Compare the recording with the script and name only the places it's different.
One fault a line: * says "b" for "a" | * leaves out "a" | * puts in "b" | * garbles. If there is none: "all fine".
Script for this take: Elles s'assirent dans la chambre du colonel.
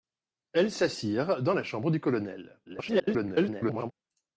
* garbles